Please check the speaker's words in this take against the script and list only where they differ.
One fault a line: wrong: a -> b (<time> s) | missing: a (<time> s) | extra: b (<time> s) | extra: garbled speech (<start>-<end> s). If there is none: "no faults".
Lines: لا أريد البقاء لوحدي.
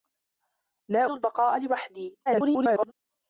missing: أريد (1.1 s)
extra: garbled speech (2.3-2.9 s)